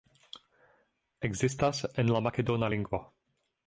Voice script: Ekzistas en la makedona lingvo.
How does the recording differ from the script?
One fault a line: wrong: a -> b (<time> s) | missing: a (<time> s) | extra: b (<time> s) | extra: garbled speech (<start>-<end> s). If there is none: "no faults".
no faults